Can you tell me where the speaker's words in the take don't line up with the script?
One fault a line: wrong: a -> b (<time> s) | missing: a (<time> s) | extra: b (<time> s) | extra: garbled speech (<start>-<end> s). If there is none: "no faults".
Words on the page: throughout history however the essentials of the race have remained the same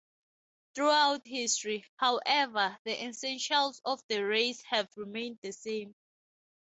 no faults